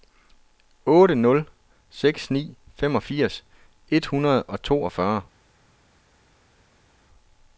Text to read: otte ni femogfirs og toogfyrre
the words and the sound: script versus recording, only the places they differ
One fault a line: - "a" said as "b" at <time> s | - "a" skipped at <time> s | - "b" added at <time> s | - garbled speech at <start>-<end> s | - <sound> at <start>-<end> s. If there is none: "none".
- "nul seks" added at 1.1 s
- "et hundrede" added at 3.9 s